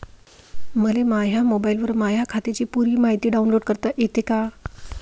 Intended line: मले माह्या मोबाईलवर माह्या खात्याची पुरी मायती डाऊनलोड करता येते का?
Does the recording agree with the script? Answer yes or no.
yes